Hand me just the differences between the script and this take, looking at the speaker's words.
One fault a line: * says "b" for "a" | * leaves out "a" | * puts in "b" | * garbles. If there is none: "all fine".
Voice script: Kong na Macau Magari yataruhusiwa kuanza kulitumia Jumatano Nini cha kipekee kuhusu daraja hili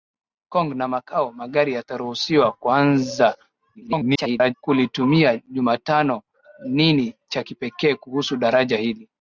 * garbles